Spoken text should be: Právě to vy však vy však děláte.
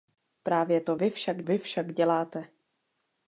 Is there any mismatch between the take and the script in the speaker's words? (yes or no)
no